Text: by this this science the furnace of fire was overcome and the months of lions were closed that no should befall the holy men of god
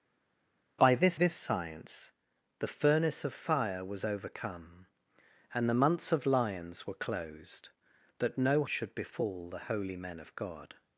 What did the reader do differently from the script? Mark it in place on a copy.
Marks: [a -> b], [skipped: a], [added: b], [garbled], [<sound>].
by this this science the furnace of fire was overcome and the months of lions were closed that no should befall the holy men of god